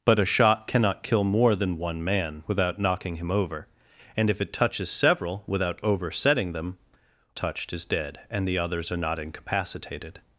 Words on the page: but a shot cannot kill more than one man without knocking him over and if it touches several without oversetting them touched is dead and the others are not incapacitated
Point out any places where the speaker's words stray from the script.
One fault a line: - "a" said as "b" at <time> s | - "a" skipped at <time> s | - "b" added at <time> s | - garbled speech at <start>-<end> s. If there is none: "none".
none